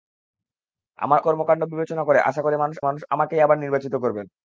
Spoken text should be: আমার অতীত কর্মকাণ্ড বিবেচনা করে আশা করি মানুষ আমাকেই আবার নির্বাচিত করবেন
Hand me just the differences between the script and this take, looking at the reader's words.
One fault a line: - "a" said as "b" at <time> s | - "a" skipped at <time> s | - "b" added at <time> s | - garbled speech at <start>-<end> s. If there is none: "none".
- "অতীত" skipped at 1.2 s
- "মানুষ" added at 2.8 s